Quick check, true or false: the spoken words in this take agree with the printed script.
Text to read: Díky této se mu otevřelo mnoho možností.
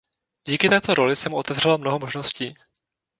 false